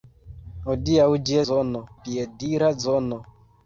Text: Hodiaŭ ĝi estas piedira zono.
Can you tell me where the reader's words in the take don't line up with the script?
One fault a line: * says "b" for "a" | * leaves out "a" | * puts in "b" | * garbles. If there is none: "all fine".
* says "zono" for "estas"